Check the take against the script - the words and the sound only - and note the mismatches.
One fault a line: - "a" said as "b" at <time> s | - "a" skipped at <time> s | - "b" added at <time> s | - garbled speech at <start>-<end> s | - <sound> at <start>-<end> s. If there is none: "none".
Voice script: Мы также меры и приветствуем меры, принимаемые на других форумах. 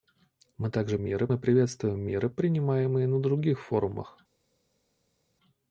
none